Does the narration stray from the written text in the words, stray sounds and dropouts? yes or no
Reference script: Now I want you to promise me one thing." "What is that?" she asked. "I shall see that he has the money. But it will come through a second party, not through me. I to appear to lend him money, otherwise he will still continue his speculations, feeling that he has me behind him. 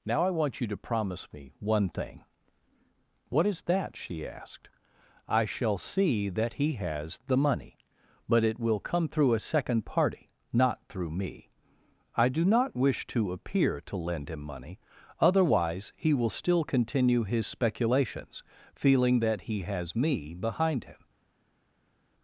yes